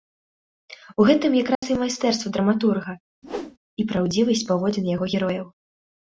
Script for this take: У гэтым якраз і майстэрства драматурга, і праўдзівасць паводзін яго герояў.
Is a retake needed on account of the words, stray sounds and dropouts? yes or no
yes